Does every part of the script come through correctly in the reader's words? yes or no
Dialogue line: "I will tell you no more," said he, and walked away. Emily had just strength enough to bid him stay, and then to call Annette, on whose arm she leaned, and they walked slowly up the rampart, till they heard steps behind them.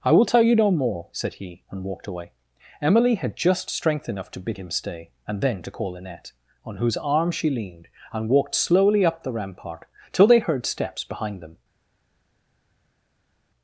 no